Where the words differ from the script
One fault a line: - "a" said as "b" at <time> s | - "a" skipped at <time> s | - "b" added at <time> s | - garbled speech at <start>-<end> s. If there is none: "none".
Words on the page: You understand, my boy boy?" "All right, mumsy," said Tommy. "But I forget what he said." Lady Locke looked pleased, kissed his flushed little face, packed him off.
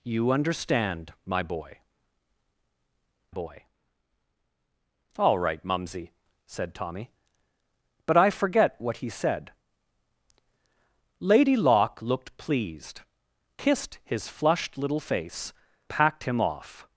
none